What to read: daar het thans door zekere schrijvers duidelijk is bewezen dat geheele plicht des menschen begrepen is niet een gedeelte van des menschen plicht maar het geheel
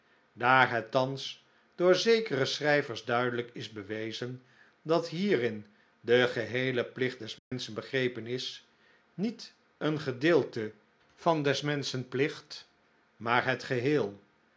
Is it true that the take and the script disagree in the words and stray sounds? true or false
true